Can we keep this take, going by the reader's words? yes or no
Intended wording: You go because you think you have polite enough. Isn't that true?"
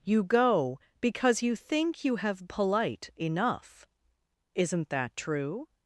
yes